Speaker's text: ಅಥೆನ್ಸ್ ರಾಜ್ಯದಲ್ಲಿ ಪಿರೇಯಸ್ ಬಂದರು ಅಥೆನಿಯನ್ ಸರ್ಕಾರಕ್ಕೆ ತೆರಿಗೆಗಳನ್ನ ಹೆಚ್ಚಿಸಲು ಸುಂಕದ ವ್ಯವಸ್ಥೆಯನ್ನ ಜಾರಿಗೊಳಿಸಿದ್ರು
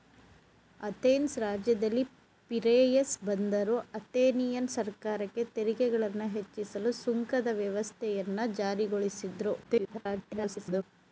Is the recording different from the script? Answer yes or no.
yes